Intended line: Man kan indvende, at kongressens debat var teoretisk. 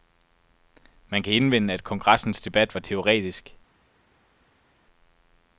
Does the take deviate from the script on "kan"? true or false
false